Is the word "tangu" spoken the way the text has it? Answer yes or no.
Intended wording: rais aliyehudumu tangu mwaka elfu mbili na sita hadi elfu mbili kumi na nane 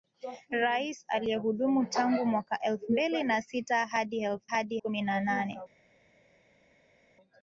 yes